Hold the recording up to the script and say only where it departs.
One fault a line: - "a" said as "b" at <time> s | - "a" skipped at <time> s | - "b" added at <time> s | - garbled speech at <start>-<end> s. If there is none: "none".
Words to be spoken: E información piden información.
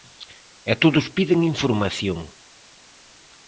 - "información" said as "todos" at 0.8 s